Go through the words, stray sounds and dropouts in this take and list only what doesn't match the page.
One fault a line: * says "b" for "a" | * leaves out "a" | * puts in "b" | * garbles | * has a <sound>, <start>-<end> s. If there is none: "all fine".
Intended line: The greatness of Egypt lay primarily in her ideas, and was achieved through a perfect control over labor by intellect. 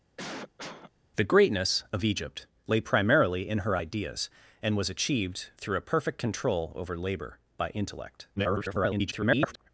* has a cough, 0.2-0.9 s
* garbles